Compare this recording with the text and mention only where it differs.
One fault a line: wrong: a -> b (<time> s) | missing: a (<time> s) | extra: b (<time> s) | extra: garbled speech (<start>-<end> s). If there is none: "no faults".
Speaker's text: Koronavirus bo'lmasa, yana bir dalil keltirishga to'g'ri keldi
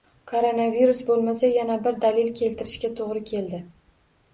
no faults